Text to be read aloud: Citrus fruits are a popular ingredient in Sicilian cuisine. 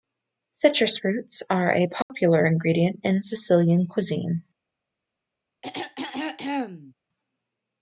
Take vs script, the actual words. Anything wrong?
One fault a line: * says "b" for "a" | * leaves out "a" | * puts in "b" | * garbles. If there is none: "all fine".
all fine